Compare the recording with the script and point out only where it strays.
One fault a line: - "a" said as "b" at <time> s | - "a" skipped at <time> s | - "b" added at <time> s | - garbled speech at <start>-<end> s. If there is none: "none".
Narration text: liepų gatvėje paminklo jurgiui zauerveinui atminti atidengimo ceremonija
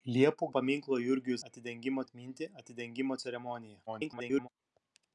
- "gatvėje" skipped at 0.5 s
- "zauerveinui" said as "atidengimo" at 1.5 s
- garbled speech at 3.9-4.5 s